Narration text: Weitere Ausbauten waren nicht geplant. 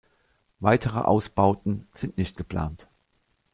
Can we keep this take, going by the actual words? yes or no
no